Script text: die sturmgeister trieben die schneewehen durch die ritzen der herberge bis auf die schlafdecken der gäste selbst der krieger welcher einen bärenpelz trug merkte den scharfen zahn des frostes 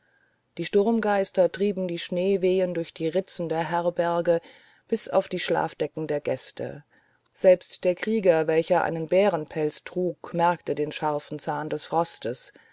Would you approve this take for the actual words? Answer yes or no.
yes